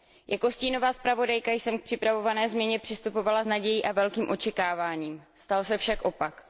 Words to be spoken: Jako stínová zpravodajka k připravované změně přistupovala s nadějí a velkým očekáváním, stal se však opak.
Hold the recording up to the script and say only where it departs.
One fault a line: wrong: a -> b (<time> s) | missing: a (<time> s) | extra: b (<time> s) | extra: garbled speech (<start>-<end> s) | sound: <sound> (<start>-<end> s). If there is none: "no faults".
extra: jsem (1.5 s)